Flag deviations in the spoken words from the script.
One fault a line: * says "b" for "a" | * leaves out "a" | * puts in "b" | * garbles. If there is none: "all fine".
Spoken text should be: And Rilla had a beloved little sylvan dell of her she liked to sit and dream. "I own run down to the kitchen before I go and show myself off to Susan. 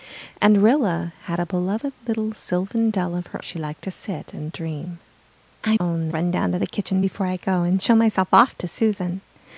all fine